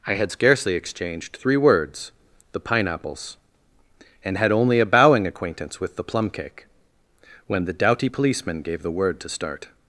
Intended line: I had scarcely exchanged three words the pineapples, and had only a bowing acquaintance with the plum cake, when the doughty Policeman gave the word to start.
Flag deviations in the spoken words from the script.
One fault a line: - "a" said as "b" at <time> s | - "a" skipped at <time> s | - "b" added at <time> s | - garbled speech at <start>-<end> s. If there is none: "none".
none